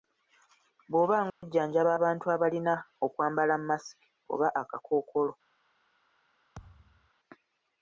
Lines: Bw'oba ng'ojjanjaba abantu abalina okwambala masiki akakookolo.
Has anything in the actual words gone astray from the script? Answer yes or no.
yes